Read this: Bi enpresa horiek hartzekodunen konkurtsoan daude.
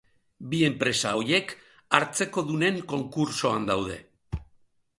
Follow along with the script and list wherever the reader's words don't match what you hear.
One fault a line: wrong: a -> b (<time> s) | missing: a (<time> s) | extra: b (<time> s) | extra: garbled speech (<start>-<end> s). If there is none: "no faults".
no faults